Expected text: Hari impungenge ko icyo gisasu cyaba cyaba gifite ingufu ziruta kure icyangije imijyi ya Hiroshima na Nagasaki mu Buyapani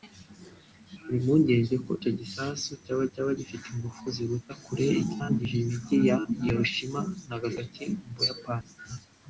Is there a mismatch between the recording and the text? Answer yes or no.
no